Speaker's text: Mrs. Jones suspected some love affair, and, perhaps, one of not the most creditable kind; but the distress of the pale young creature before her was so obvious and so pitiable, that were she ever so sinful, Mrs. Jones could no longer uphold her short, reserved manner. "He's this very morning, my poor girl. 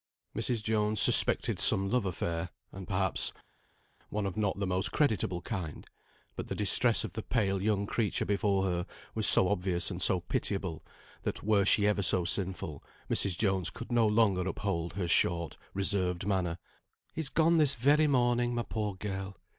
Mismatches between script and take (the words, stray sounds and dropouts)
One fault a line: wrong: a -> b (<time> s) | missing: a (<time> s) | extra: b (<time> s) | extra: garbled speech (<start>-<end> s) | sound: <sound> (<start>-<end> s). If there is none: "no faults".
extra: gone (17.3 s)